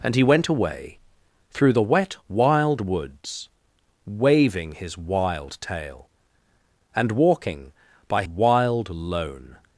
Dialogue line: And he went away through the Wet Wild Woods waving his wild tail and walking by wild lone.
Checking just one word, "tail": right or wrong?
right